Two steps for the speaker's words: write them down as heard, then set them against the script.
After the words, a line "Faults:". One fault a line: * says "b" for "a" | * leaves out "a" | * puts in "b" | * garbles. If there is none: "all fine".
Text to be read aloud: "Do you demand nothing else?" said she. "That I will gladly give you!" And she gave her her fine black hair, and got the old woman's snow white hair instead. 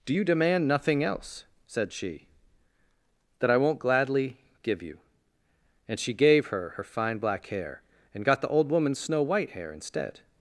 "Do you demand nothing else?" said she. "That I won't gladly give you!" And she gave her her fine black hair, and got the old woman's snow white hair instead.
Faults:
* says "won't" for "will"